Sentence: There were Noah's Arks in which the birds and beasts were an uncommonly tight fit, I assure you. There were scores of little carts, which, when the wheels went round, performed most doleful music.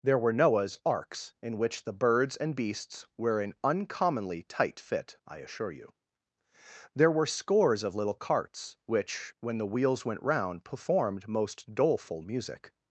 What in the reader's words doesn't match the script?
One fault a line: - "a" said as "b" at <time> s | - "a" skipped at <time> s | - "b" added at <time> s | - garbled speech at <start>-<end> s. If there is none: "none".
none